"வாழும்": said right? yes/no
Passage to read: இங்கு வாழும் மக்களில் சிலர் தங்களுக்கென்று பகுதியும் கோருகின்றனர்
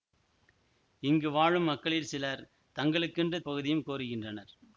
yes